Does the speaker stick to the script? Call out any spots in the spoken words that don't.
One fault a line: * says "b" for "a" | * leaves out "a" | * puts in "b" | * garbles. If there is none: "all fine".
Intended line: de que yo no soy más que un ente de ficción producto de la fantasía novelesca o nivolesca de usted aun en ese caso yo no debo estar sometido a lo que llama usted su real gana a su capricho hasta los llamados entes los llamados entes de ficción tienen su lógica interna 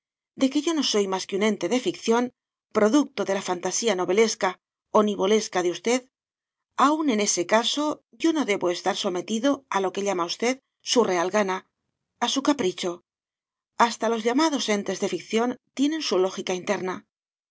* leaves out "los llamados entes"